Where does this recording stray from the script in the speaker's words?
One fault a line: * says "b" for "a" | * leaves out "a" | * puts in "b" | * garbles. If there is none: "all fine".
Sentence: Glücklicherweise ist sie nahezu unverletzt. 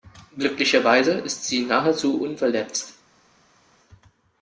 all fine